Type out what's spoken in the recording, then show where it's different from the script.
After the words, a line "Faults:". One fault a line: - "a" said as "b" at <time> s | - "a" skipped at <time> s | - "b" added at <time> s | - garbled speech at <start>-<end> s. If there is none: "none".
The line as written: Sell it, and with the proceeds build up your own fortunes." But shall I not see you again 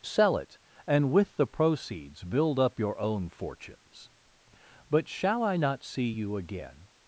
Sell it, and with the proceeds build up your own fortunes." But shall I not see you again
Faults:
none